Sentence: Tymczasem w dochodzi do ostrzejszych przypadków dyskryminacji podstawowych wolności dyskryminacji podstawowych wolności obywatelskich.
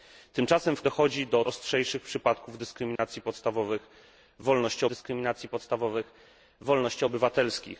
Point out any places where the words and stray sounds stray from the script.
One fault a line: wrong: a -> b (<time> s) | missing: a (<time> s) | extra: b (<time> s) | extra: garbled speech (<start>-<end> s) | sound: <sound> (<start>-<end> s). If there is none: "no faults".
sound: dropout (3.0-3.0 s)